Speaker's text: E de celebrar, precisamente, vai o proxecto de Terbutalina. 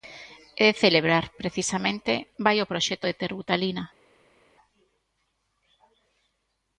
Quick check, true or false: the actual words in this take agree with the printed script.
true